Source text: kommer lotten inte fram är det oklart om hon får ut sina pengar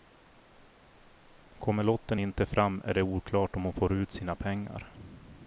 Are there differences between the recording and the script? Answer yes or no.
no